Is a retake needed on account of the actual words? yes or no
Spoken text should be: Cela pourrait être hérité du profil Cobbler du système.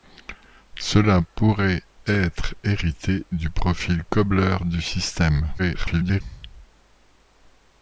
yes